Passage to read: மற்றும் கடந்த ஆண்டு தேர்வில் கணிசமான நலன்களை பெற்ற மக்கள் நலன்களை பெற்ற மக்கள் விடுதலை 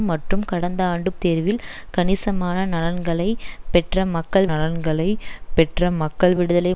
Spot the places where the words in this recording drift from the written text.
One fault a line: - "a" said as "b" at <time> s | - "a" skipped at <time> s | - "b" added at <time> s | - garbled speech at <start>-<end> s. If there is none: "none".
none